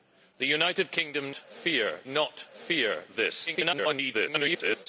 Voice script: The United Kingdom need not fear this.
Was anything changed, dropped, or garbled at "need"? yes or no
yes